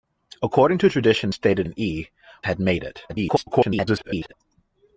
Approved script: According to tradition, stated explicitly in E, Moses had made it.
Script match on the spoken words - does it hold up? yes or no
no